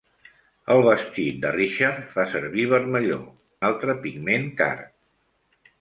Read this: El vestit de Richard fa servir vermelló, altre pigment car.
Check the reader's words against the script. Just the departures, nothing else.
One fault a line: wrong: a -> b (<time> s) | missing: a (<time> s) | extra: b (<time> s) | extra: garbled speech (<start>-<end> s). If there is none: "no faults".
no faults